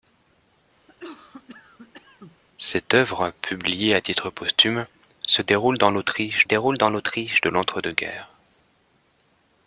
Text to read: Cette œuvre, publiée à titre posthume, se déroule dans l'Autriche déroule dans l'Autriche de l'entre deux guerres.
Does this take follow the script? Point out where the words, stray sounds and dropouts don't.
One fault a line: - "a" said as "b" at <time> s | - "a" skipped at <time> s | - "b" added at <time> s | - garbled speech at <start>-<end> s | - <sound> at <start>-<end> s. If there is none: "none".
- cough at 0.9-2.4 s